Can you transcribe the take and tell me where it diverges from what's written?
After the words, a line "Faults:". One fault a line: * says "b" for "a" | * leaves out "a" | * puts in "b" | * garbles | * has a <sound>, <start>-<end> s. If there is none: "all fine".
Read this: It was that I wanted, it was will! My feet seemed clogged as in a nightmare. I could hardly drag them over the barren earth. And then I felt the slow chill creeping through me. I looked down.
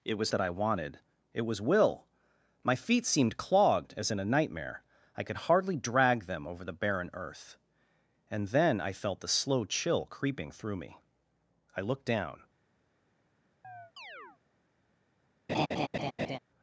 It was that I wanted, it was will! My feet seemed clogged as in a nightmare. I could hardly drag them over the barren earth. And then I felt the slow chill creeping through me. I looked down.
Faults:
* has a chirp, 13.6-14.4 s
* has a laugh, 15.5-16.4 s